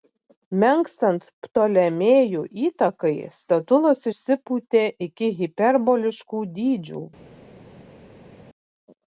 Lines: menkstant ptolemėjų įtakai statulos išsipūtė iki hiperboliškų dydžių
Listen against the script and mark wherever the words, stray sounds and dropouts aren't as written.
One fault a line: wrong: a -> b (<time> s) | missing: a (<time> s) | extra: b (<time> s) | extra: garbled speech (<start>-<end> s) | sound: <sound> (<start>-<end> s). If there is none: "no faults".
no faults